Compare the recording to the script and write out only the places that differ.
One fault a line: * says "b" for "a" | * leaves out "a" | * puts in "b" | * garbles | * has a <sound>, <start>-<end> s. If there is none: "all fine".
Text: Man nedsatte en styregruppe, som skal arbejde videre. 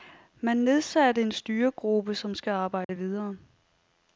* has a dropout, 2.8-2.9 s